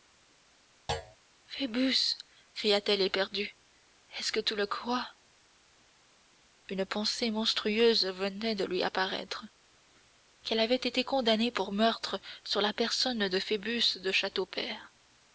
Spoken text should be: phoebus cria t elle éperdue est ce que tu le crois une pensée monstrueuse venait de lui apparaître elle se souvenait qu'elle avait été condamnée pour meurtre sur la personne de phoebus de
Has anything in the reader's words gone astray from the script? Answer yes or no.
yes